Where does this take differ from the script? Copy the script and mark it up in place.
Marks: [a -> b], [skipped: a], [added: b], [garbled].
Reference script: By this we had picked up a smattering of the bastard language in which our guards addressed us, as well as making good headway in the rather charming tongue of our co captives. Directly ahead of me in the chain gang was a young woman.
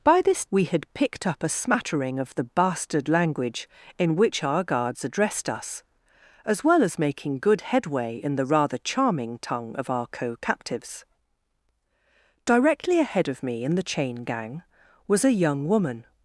By this we had picked up a smattering of the bastard language in which our guards addressed us, as well as making good headway in the rather charming tongue of our co captives. Directly ahead of me in the chain gang was a young woman.